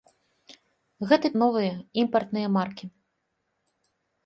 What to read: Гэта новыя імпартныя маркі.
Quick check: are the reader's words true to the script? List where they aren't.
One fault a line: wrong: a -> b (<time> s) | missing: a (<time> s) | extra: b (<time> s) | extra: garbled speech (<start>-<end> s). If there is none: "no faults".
no faults